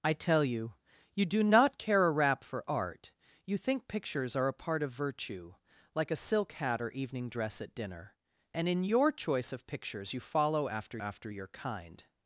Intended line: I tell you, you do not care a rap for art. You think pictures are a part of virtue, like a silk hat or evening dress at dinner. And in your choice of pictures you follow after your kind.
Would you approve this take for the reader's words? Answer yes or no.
no